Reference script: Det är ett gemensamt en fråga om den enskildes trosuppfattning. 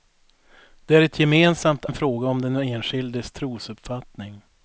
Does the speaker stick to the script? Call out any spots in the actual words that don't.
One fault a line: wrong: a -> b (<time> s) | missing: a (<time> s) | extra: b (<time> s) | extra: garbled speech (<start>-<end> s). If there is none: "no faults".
no faults